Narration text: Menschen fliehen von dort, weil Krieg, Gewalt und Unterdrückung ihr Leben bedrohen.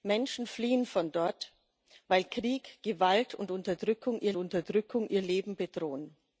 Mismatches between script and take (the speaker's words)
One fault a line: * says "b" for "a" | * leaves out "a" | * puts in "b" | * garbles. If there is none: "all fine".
* puts in "Unterdrückung ihr"